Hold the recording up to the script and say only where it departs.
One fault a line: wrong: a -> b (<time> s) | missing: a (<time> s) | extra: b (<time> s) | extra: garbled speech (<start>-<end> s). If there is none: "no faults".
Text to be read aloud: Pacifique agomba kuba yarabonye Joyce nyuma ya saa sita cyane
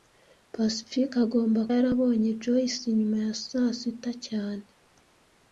missing: kuba (1.6 s)